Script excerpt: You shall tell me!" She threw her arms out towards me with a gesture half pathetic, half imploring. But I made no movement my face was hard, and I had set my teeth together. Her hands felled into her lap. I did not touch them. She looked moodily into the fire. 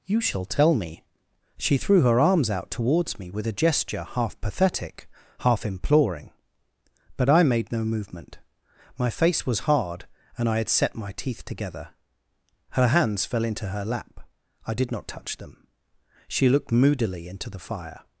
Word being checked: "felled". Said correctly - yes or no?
no